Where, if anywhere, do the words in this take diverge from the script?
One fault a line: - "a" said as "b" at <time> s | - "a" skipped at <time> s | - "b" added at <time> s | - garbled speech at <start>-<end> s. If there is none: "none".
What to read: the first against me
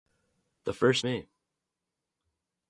- "against" skipped at 1.1 s